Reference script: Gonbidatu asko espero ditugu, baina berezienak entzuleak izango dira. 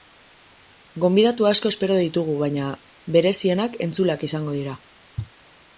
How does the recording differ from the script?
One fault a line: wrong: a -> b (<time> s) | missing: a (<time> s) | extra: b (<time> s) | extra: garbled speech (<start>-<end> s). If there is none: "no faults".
no faults